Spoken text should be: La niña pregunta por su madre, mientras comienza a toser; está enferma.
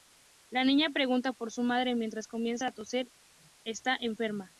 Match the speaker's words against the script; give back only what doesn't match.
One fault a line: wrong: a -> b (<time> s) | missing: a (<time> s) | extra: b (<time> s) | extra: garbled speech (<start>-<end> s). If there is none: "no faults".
no faults